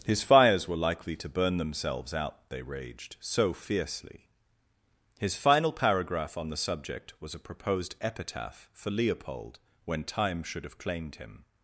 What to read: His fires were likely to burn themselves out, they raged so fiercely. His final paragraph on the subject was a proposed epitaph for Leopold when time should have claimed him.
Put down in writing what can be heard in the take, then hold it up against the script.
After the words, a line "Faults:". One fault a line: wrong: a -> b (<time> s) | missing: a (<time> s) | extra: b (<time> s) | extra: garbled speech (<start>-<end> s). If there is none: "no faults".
His fires were likely to burn themselves out, they raged so fiercely. His final paragraph on the subject was a proposed epitaph for Leopold when time should have claimed him.
Faults:
no faults